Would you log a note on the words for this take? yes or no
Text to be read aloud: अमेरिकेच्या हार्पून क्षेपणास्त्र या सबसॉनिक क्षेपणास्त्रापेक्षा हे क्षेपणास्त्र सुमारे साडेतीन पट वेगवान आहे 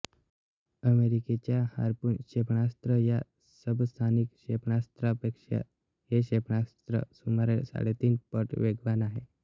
no